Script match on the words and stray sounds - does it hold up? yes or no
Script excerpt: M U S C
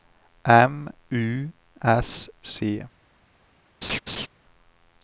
no